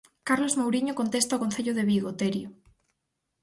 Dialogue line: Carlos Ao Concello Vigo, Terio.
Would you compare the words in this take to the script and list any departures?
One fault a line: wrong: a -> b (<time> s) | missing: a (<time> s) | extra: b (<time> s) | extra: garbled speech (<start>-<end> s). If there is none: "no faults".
extra: Mouriño contesta (0.6 s)
extra: de (1.7 s)